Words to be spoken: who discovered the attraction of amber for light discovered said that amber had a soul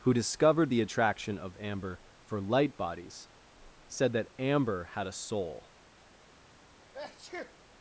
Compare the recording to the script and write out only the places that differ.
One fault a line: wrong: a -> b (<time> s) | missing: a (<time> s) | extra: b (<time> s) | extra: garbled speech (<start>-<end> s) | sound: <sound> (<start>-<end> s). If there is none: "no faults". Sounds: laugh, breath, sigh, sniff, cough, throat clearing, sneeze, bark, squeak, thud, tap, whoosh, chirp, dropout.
wrong: discovered -> bodies (2.8 s)
sound: sneeze (6.9-7.6 s)